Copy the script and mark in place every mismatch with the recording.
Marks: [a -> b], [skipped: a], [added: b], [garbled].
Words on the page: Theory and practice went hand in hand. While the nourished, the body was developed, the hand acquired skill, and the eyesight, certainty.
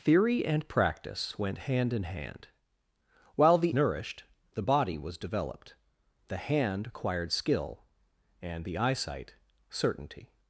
Theory and practice went hand in hand. While the nourished, the body was developed, the hand acquired skill, and the eyesight, certainty.